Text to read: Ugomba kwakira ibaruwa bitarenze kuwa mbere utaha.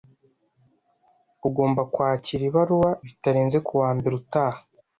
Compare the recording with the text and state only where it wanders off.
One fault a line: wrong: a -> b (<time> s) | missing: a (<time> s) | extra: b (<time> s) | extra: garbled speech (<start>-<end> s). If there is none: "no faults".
no faults